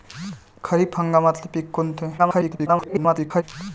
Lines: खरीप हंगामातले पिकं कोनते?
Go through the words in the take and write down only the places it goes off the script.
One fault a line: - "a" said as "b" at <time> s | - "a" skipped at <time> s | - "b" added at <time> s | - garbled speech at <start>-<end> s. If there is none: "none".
- garbled speech at 2.2-3.4 s